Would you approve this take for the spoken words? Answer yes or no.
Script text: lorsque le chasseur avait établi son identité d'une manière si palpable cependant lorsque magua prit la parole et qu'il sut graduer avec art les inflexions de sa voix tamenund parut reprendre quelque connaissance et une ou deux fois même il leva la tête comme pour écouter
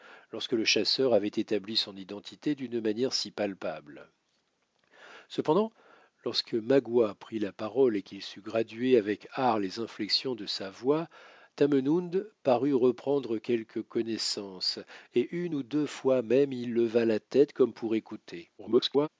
no